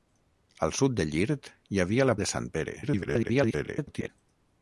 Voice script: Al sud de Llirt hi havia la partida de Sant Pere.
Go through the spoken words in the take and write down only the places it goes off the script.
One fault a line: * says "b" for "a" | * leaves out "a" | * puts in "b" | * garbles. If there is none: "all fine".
* leaves out "partida"
* garbles